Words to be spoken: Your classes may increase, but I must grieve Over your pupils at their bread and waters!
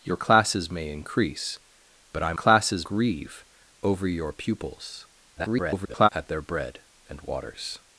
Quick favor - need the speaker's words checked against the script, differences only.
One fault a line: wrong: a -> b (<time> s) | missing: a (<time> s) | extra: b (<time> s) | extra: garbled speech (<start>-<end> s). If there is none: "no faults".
wrong: must -> classes (2.3 s)
extra: garbled speech (5.4-6.1 s)